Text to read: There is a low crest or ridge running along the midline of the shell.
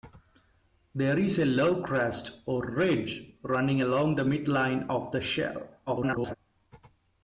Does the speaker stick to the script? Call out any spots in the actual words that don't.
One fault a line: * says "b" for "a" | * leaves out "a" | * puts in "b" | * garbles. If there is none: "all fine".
* garbles